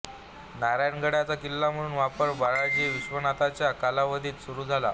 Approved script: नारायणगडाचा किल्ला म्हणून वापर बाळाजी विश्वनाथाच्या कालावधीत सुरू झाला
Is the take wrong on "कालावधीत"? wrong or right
right